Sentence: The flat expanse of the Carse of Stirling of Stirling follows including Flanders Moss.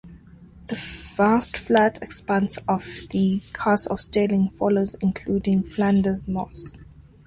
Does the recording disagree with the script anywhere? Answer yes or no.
yes